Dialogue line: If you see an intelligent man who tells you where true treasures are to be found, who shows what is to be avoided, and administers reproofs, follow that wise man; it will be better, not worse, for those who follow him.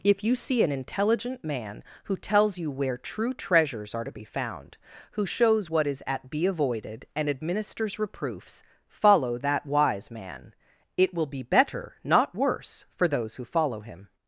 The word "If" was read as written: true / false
true